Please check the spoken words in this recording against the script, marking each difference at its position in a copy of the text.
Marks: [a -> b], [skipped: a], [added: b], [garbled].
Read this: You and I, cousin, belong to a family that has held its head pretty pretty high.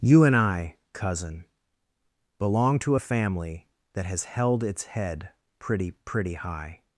You and I, cousin, belong to a family that has held its head pretty pretty high.